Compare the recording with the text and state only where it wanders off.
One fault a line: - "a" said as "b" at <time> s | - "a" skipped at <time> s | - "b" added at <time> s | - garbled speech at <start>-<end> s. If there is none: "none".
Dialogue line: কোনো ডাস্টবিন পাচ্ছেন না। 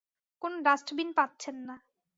none